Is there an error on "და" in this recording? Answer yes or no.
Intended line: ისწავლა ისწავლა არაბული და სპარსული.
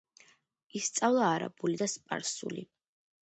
no